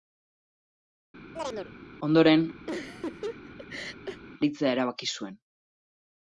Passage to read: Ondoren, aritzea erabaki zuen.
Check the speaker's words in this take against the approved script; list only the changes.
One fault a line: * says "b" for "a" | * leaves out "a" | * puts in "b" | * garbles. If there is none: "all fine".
all fine